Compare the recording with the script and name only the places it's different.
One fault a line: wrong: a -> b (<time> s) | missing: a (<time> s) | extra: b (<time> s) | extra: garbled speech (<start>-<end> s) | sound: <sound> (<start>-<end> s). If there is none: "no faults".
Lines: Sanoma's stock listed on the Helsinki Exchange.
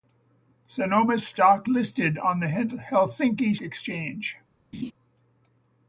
sound: laugh (4.7-4.9 s)